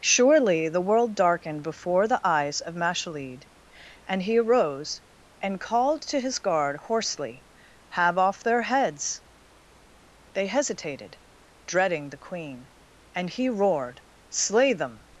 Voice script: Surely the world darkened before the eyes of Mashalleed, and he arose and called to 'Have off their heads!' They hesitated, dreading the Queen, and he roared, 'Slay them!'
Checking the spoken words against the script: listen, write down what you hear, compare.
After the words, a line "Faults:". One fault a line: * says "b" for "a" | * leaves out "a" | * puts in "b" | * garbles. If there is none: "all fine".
Surely the world darkened before the eyes of Mashalleed, and he arose and called to his guard hoarsely, 'Have off their heads!' They hesitated, dreading the Queen, and he roared, 'Slay them!'
Faults:
* puts in "his guard hoarsely"